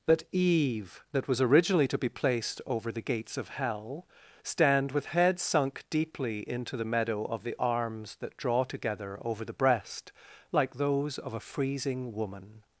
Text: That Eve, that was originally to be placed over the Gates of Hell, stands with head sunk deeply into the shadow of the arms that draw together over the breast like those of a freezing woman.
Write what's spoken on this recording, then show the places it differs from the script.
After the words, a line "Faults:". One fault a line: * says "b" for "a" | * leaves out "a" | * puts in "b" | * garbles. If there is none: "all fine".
That Eve, that was originally to be placed over the Gates of Hell, stand with head sunk deeply into the meadow of the arms that draw together over the breast like those of a freezing woman.
Faults:
* says "stand" for "stands"
* says "meadow" for "shadow"